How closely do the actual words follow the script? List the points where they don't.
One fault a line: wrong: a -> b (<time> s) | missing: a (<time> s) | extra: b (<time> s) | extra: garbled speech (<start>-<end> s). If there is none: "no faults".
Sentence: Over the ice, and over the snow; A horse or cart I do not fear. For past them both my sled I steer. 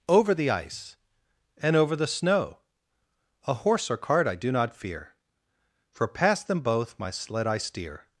no faults